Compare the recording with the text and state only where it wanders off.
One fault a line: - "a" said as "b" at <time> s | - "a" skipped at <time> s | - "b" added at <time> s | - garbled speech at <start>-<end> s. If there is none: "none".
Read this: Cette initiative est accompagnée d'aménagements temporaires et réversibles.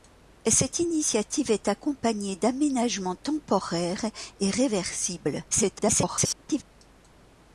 - garbled speech at 5.5-6.6 s